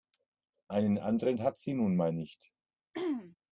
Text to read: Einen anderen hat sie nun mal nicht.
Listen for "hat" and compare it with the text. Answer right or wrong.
right